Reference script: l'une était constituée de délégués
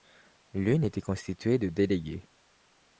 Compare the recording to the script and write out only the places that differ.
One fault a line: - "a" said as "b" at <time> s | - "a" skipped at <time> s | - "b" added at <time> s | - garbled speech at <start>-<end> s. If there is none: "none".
none